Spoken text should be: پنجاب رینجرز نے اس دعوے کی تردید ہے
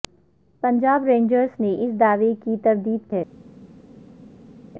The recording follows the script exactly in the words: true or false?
true